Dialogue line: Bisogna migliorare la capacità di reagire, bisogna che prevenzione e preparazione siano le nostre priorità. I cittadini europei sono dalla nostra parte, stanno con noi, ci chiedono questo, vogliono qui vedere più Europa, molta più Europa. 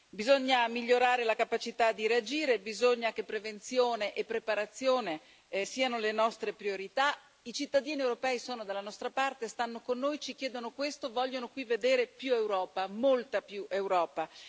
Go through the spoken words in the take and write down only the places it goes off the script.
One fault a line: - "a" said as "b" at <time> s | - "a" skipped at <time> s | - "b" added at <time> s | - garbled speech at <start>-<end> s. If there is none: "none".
none